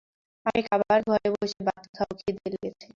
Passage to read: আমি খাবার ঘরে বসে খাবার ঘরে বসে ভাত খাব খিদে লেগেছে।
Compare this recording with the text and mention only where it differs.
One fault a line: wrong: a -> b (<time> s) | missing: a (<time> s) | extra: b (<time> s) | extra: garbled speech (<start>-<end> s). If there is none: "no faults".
missing: খাবার ঘরে বসে (1.6 s)